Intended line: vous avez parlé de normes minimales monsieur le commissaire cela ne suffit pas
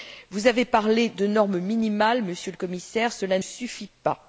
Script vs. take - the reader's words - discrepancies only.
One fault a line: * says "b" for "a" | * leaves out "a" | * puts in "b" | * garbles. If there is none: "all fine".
* leaves out "ne"